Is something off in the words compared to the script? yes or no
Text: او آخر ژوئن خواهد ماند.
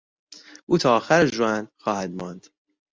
yes